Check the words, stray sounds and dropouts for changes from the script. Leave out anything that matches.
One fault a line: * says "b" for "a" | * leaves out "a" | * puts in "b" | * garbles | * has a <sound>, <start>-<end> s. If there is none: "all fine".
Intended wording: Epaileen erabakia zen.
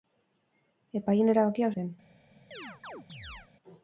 * has a chirp, 2.5-3.5 s